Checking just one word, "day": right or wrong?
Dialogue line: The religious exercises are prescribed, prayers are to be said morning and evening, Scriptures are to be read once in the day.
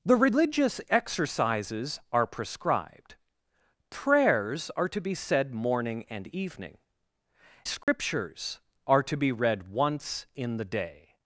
right